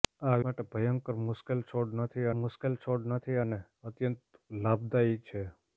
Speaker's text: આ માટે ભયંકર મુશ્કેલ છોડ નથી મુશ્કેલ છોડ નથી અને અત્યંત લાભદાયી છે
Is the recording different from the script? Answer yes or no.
no